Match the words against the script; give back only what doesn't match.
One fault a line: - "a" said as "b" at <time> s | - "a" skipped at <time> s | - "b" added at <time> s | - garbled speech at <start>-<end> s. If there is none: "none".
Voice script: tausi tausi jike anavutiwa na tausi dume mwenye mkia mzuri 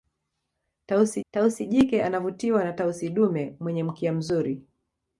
none